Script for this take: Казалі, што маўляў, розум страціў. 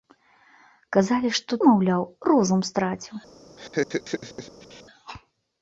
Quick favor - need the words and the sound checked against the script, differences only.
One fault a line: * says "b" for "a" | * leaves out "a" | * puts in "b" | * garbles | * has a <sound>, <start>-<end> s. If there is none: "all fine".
* has a laugh, 3.6-4.8 s